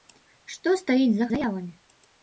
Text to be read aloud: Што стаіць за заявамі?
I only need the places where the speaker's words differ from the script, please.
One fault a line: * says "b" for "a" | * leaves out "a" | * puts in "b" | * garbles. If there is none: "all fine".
all fine